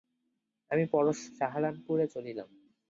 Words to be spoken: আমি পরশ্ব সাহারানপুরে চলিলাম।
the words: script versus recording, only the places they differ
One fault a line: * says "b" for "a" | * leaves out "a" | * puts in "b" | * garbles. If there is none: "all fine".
all fine